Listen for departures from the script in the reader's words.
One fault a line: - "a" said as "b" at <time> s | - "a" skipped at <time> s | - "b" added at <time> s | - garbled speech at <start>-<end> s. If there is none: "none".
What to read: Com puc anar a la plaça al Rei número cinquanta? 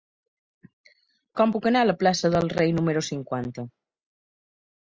- "al" said as "del" at 2.4 s